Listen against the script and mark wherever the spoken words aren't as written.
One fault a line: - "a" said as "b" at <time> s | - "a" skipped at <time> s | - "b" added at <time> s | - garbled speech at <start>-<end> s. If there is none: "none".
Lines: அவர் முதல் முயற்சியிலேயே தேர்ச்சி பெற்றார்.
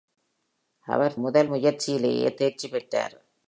none